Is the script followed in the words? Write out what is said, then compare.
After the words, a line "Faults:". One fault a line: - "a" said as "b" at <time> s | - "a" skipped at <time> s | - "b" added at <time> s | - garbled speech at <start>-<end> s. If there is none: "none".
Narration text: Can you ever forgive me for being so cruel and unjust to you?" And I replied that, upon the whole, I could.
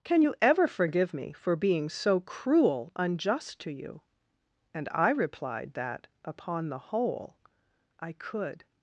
Can you ever forgive me for being so cruel unjust to you?" And I replied that, upon the whole, I could.
Faults:
- "and" skipped at 2.9 s